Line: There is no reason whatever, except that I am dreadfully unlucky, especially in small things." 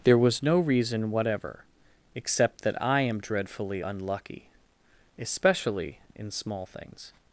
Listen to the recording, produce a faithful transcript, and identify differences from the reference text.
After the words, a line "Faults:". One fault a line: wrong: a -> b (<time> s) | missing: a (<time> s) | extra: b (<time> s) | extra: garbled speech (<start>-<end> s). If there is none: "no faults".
There was no reason whatever, except that I am dreadfully unlucky, especially in small things."
Faults:
wrong: is -> was (0.2 s)